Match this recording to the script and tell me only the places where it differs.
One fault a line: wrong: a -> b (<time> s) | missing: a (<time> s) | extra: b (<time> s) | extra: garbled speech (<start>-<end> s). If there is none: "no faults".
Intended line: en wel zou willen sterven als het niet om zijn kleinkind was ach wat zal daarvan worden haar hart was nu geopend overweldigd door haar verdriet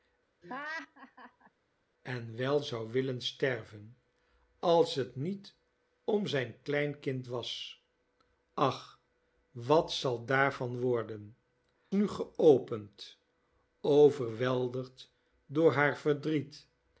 missing: haar hart was (11.4 s)